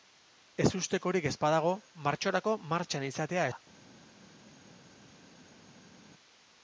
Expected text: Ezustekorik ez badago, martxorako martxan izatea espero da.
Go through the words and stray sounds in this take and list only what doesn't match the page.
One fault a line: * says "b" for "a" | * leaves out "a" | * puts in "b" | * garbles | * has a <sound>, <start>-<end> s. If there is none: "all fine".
* leaves out "espero"